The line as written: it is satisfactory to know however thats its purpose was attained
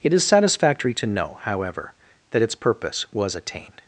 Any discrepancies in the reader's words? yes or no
yes